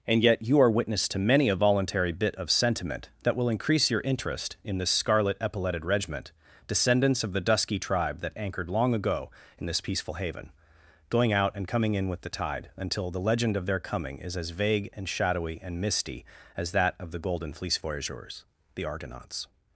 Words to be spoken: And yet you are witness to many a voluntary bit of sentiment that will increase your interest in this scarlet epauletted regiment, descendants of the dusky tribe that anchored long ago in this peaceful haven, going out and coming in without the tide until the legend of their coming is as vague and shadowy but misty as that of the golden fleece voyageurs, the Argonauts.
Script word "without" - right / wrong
wrong